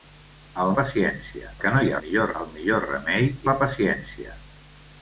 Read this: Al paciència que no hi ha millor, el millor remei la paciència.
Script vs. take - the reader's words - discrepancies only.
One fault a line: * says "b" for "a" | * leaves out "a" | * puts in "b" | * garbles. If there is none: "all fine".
all fine